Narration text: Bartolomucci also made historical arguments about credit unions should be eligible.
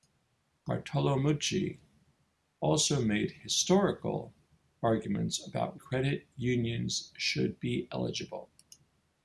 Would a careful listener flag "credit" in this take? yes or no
no